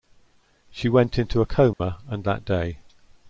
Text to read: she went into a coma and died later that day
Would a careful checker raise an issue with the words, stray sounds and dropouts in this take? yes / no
yes